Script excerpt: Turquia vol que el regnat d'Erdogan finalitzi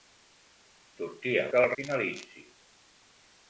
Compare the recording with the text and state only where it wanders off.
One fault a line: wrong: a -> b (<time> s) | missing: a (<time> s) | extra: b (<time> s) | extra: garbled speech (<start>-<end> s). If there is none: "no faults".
missing: vol (1.4 s)
missing: regnat d'Erdogan (1.7 s)